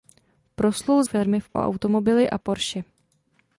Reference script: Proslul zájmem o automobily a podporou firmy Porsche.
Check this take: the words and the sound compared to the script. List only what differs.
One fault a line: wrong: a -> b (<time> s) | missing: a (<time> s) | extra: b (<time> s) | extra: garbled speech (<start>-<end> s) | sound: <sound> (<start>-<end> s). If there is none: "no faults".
wrong: zájmem -> firmy (1.0 s)
missing: podporou firmy (2.4 s)